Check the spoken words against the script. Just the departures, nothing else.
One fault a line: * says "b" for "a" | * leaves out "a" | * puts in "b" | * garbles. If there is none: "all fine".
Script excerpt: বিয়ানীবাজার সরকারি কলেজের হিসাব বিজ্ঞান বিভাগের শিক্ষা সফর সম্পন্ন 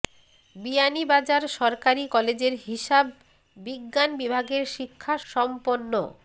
* leaves out "সফর"